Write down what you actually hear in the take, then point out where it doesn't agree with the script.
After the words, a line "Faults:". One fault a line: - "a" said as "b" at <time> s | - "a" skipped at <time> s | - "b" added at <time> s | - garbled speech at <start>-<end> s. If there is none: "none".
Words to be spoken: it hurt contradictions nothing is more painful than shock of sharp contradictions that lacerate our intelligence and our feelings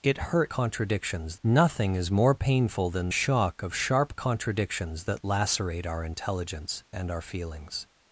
it hurt contradictions nothing is more painful than shock of sharp contradictions that lacerate our intelligence and our feelings
Faults:
none